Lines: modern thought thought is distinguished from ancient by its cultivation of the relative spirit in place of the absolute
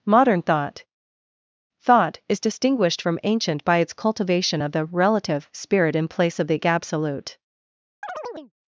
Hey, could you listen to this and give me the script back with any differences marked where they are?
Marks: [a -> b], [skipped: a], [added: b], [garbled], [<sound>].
modern thought thought is distinguished from ancient by its cultivation of the relative spirit in place of the absolute [chirp]